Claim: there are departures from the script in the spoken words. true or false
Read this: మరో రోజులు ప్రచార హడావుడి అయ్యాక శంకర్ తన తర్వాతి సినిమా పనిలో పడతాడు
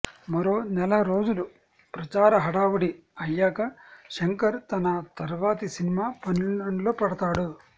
true